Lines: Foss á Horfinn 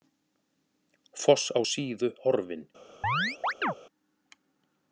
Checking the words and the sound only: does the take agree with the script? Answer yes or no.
no